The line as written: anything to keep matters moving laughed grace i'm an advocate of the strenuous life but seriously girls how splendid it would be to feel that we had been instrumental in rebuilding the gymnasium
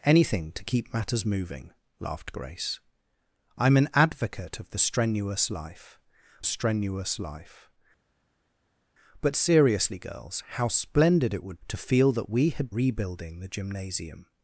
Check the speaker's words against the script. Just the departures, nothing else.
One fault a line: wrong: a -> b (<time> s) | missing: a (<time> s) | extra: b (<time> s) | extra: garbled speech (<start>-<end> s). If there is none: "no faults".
extra: strenuous life (6.4 s)
missing: be (11.6 s)
missing: been instrumental in (12.7 s)